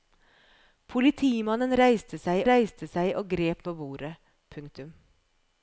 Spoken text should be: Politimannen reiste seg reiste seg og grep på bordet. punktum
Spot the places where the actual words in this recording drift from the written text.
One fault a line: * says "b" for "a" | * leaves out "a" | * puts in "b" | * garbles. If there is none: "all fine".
all fine